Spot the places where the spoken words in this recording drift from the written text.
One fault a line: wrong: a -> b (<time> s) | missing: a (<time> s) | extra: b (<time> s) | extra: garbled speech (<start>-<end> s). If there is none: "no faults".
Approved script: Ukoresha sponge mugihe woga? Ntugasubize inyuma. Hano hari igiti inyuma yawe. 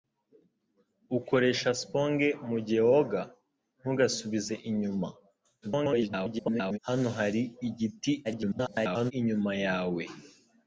extra: garbled speech (5.6-6.8 s)
extra: garbled speech (8.2-9.1 s)